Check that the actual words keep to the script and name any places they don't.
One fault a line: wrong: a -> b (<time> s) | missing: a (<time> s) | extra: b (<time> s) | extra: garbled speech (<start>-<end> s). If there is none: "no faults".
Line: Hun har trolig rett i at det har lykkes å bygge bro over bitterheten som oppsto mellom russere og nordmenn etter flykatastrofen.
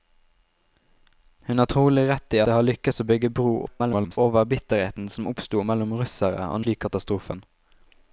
missing: at (2.4 s)
extra: garbled speech (3.7-4.2 s)
missing: nordmenn etter (6.6 s)